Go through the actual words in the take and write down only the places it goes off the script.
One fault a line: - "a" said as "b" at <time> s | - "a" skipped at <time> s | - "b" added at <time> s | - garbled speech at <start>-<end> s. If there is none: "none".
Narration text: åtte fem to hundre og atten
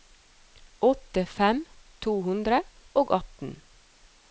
none